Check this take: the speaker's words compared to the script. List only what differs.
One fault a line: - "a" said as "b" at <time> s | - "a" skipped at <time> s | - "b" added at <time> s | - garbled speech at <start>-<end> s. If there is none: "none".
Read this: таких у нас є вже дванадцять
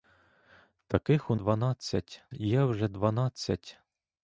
- "нас" said as "дванадцять" at 1.3 s